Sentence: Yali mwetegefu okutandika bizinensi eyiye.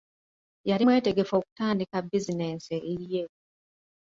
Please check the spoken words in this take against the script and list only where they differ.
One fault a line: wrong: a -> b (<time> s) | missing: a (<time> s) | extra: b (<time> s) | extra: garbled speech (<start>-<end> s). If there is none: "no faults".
no faults